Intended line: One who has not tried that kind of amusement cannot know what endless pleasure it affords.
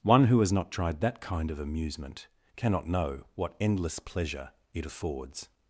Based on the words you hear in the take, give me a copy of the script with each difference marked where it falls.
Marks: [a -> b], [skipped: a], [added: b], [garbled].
One who has not tried that kind of amusement cannot know what endless pleasure it affords.